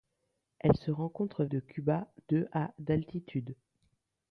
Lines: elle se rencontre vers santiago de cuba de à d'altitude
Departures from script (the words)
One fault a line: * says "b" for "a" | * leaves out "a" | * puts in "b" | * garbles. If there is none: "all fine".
* leaves out "vers santiago"